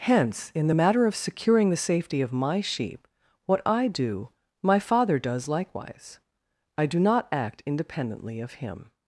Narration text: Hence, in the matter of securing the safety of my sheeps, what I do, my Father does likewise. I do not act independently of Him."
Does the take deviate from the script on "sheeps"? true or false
true